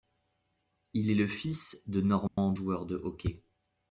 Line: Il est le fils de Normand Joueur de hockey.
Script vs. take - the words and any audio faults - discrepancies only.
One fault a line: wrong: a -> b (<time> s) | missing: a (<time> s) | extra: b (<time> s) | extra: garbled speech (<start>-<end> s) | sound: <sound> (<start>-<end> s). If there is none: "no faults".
sound: dropout (2.3-2.4 s)